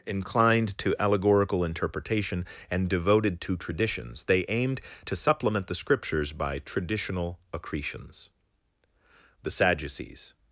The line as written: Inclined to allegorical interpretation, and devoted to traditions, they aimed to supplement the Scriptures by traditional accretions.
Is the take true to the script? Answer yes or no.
no